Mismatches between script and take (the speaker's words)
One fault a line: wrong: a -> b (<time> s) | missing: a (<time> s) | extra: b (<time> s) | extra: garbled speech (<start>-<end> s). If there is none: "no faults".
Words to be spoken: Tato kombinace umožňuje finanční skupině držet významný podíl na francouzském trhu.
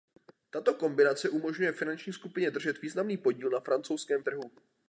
no faults